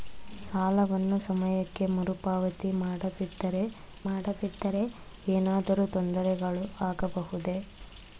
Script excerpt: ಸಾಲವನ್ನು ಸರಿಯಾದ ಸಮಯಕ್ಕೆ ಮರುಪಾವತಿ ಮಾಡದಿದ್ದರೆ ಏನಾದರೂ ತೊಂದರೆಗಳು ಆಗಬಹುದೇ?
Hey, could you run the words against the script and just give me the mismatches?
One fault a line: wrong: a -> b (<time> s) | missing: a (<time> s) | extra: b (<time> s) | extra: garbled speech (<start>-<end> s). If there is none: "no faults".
missing: ಸರಿಯಾದ (1.2 s)
extra: ಮಾಡದಿದ್ದರೆ (4.1 s)